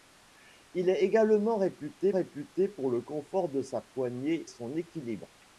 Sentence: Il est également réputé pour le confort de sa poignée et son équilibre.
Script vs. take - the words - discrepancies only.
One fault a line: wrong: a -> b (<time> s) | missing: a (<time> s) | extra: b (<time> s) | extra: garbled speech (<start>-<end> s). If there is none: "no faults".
extra: réputé (2.1 s)
missing: et (4.5 s)